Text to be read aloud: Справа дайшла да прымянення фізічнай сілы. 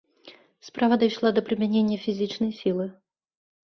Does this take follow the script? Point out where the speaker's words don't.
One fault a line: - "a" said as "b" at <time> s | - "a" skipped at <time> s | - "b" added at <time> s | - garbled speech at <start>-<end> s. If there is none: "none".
none